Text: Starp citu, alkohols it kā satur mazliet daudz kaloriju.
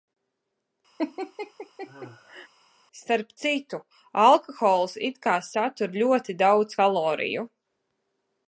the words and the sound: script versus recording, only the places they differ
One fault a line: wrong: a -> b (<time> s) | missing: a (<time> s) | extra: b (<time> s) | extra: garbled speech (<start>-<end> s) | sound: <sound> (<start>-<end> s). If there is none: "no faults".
sound: laugh (1.0-2.5 s)
wrong: mazliet -> ļoti (6.0 s)